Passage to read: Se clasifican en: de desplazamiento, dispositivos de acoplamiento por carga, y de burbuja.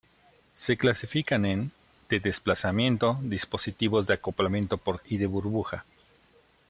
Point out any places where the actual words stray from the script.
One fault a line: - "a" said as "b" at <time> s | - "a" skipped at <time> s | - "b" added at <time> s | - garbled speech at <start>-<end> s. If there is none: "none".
- "carga" skipped at 5.0 s